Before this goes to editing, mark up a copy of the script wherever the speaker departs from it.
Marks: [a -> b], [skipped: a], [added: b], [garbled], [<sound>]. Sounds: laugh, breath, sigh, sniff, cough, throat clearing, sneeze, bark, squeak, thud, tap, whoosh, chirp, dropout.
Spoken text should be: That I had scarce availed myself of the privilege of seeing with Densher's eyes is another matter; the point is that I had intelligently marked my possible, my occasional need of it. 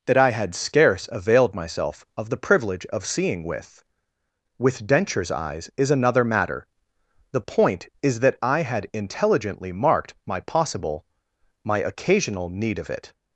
That I had scarce availed myself of the privilege of seeing with [added: with] Densher's eyes is another matter; the point is that I had intelligently marked my possible, my occasional need of it.